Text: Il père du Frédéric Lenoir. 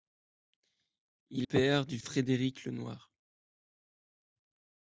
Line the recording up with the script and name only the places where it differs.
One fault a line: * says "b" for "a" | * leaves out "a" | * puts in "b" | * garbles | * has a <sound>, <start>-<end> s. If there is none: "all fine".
all fine